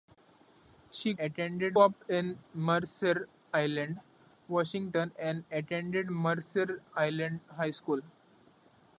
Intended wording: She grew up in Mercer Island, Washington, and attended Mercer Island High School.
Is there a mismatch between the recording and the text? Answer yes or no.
yes